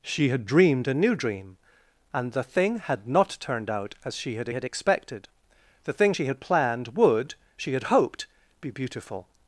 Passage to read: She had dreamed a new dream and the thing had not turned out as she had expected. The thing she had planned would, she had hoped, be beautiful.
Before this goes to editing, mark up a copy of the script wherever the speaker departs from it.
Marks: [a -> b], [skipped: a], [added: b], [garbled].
She had dreamed a new dream and the thing had not turned out as she had [added: had] expected. The thing she had planned would, she had hoped, be beautiful.